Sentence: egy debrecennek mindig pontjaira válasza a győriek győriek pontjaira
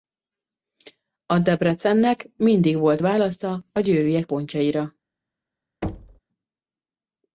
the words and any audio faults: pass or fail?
fail